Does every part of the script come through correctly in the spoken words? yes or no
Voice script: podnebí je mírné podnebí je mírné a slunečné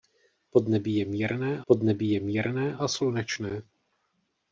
yes